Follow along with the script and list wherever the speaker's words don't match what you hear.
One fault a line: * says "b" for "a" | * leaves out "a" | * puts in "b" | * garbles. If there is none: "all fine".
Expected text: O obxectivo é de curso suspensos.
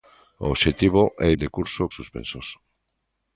all fine